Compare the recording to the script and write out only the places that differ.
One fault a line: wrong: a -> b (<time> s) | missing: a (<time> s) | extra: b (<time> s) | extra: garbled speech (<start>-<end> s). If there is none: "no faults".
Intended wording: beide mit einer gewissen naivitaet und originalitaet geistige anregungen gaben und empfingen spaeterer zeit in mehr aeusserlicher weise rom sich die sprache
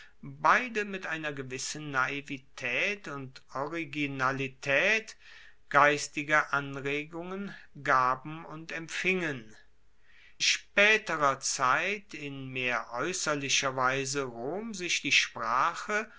no faults